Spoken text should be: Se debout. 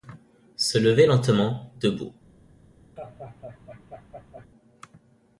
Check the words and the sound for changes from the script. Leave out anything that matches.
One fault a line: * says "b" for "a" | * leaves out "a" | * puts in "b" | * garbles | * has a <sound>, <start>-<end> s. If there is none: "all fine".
* puts in "lever lentement"
* has a laugh, 3.0-4.5 s